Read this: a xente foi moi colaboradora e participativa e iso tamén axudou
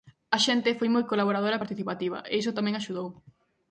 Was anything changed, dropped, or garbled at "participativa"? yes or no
no